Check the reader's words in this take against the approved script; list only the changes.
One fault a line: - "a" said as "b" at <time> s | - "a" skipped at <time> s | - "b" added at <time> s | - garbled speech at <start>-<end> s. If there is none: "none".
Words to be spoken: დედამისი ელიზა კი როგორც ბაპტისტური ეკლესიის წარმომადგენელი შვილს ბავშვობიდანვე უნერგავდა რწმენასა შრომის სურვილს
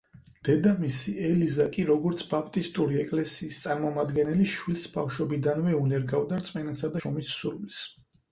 none